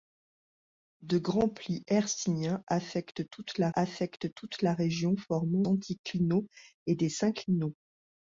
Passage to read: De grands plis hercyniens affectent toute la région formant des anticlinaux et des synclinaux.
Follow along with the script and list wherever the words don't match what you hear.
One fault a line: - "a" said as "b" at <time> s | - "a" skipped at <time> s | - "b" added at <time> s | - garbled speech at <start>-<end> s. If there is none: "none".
- "affectent toute la" added at 3.7 s
- "des" skipped at 5.7 s